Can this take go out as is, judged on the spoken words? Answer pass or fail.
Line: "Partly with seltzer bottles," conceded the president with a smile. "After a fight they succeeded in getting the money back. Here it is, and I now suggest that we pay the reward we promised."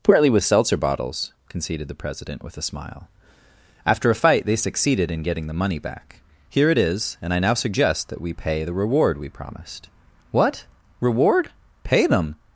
fail